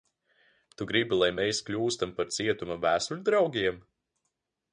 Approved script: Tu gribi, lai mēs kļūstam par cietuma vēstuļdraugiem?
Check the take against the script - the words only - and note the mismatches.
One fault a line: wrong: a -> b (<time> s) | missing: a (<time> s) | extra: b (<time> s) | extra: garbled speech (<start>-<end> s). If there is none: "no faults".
no faults